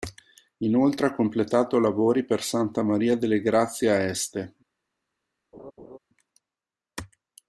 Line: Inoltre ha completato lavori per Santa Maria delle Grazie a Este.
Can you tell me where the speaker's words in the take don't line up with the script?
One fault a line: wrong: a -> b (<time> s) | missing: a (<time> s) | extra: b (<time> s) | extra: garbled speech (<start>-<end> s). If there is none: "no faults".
no faults